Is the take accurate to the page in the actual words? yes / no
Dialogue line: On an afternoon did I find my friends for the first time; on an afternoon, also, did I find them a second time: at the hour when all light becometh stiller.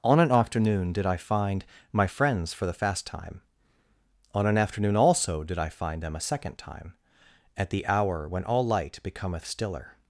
no